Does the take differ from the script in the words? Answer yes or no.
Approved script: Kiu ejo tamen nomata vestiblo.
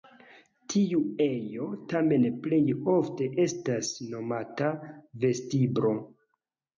yes